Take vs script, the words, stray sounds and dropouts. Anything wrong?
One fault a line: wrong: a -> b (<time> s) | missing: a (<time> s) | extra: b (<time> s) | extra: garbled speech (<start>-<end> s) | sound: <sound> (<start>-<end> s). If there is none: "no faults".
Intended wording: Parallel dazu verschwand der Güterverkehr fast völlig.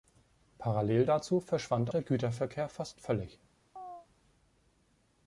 sound: chirp (3.8-4.1 s)